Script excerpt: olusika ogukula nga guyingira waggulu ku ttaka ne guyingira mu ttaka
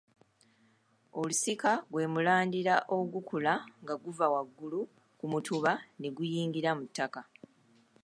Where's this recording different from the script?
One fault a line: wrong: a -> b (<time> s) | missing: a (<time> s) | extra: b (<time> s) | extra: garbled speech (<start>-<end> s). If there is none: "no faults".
extra: gwe mulandira (1.9 s)
wrong: guyingira -> guva (4.0 s)
wrong: ttaka -> mutuba (5.3 s)